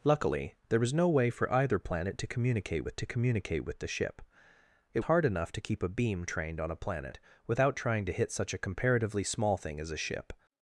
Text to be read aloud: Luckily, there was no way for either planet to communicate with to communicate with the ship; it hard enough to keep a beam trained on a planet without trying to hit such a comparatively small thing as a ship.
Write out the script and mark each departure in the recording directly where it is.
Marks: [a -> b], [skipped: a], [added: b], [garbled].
Luckily, there was no way for either planet to communicate with to communicate with the ship; it hard enough to keep a beam trained on a planet without trying to hit such a comparatively small thing as a ship.